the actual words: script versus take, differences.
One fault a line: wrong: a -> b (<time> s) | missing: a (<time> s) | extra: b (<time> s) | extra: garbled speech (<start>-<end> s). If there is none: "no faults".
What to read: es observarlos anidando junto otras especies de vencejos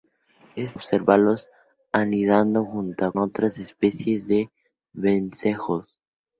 no faults